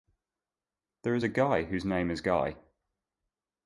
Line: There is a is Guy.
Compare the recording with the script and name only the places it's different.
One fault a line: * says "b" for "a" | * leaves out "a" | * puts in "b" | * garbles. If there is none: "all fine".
* puts in "guy whose name"